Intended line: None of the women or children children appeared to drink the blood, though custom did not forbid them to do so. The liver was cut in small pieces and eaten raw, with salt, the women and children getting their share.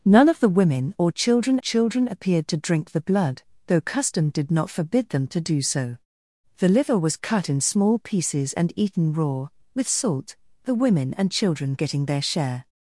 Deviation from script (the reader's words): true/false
false